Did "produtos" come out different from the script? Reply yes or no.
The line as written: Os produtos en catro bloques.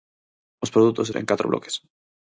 no